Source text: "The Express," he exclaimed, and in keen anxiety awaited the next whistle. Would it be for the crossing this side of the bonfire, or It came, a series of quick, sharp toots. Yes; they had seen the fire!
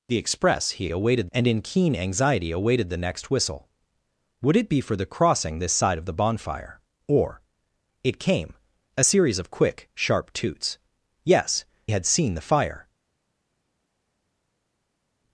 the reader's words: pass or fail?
fail